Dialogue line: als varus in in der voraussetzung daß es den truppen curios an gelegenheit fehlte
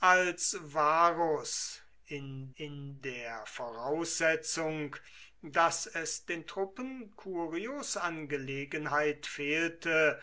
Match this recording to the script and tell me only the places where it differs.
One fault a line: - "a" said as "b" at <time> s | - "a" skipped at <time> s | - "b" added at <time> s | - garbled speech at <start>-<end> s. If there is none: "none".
none